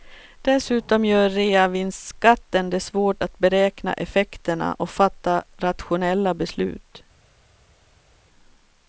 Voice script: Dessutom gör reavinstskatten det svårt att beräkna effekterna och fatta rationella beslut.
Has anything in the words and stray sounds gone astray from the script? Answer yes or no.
no